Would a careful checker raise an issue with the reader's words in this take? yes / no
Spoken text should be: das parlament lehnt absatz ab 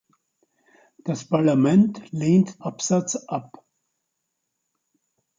no